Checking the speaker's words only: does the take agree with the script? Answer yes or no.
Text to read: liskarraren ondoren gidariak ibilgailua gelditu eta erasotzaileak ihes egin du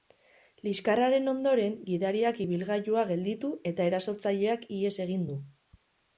yes